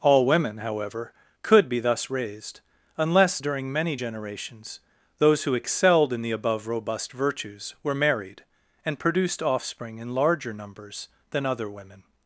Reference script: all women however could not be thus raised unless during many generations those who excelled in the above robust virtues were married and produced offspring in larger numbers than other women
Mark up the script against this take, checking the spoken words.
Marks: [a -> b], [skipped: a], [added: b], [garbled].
all women however could [skipped: not] be thus raised unless during many generations those who excelled in the above robust virtues were married and produced offspring in larger numbers than other women